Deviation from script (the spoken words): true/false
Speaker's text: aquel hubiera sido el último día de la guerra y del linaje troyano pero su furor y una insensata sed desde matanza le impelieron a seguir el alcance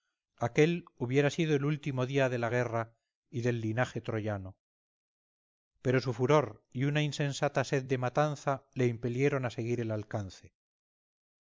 true